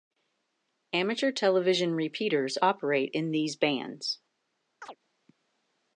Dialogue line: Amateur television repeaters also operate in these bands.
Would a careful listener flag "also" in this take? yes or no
yes